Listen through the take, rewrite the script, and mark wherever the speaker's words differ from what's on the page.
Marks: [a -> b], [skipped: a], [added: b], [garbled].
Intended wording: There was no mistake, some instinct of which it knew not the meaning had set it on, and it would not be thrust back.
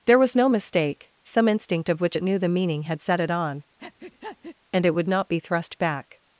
There was no mistake, some instinct of which it knew [skipped: not] the meaning had set it on, and it would not be thrust back.